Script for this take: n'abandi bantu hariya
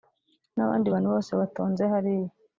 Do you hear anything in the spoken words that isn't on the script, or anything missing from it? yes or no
yes